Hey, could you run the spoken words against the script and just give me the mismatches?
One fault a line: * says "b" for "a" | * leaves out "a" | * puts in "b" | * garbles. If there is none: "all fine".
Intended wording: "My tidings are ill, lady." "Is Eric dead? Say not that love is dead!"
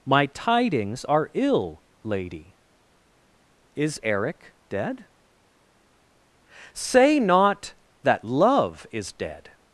all fine